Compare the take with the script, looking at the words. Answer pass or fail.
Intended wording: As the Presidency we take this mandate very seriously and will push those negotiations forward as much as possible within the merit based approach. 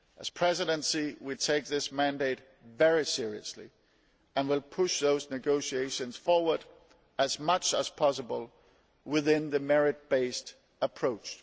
pass